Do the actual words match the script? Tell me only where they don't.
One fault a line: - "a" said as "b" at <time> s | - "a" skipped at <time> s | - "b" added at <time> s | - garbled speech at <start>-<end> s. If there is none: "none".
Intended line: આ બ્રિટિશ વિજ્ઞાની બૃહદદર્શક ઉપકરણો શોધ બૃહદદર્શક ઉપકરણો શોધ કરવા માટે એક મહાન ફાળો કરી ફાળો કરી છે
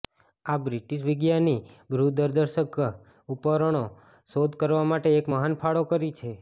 - "બૃહદદર્શક ઉપકરણો શોધ" skipped at 4.6 s
- "ફાળો કરી" skipped at 6.2 s